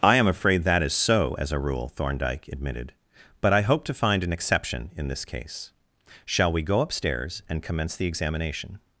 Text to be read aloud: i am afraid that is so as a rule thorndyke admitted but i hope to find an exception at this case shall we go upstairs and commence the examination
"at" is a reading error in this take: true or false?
true